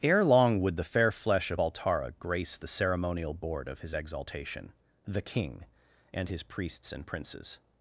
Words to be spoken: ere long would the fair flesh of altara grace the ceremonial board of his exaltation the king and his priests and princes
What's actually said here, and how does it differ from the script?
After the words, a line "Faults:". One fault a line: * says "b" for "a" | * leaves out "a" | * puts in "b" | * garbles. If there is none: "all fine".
ere long would the fair flesh of altara grace the ceremonial board of his exaltation the king and his priests and princes
Faults:
all fine